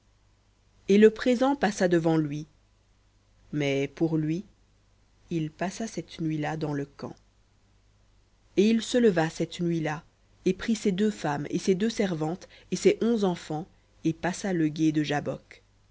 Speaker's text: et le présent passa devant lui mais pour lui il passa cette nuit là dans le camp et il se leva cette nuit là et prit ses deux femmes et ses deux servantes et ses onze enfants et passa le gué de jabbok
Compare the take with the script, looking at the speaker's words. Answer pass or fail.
pass